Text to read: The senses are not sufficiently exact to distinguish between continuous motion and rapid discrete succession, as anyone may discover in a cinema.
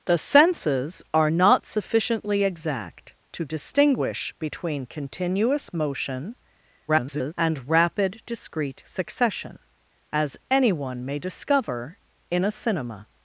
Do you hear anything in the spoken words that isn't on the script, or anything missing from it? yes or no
yes